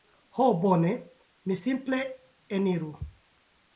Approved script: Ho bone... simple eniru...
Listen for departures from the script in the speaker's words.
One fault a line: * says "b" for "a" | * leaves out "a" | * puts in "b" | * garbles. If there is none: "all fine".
* puts in "mi"